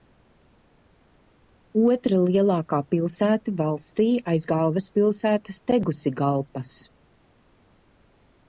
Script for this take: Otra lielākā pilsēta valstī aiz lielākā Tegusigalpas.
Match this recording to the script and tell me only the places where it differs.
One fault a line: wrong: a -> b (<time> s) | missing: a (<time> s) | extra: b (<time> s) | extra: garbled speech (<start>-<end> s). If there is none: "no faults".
wrong: lielākā -> galvaspilsētas (4.5 s)